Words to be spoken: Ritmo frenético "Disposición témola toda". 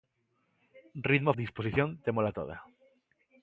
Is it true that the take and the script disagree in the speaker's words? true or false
true